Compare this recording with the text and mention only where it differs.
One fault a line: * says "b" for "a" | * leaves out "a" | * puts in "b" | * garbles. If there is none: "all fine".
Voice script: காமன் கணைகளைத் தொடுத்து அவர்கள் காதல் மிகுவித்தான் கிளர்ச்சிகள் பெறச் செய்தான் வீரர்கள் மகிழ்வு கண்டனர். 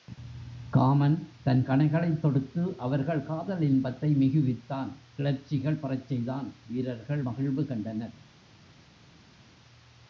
* puts in "தன்"
* puts in "இன்பத்தை"